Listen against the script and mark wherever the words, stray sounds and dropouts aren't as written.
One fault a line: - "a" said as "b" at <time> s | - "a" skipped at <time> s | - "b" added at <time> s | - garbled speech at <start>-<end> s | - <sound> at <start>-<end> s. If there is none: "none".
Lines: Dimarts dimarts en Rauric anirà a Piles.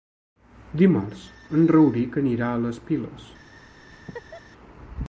- "dimarts" skipped at 1.3 s
- "les" added at 2.7 s
- laugh at 3.9-4.4 s